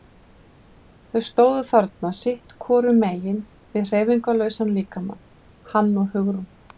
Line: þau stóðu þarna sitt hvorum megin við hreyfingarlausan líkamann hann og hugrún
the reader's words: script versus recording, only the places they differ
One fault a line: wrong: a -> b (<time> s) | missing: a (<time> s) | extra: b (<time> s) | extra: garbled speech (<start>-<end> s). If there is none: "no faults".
no faults